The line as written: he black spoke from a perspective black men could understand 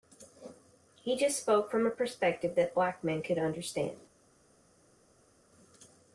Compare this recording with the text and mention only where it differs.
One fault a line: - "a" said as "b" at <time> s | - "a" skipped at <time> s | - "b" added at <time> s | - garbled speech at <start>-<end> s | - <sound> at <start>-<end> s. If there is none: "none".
- "black" said as "just" at 1.1 s
- "that" added at 2.6 s